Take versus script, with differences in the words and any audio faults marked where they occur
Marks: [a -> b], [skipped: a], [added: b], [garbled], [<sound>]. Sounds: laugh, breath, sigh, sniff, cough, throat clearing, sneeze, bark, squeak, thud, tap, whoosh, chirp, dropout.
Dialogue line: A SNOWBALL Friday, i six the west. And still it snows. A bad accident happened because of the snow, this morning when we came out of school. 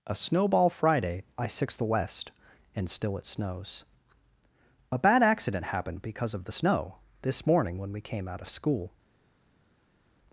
A SNOWBALL Friday, i six the west. And still it snows. A bad accident happened because of the snow, this morning when we came out of school.